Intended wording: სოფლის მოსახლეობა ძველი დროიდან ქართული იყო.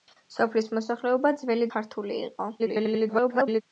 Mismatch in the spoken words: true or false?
true